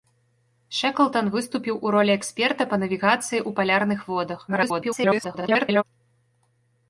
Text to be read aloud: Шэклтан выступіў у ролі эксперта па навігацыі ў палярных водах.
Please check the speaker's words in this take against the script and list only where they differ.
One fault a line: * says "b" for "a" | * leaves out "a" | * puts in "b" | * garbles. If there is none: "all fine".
* garbles